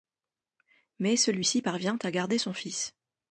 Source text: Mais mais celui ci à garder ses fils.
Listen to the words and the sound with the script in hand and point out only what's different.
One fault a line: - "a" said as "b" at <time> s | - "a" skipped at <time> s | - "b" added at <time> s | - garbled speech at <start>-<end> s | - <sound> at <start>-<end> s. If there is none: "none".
- "mais" skipped at 1.1 s
- "parvient" added at 1.6 s
- "ses" said as "son" at 2.4 s